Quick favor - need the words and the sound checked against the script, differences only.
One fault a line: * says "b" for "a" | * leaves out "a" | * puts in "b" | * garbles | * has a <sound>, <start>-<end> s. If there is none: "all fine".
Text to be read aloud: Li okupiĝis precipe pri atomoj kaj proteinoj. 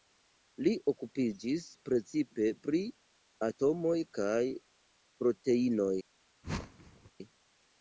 * has a whoosh, 6.4-7.1 s